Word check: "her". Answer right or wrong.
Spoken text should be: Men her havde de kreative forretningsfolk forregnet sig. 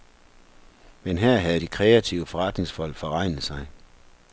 right